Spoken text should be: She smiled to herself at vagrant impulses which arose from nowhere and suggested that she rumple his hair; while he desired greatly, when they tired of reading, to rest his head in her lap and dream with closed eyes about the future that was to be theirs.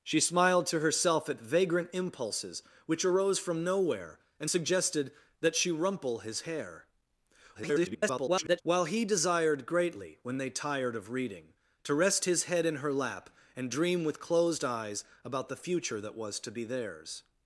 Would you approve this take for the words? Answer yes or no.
no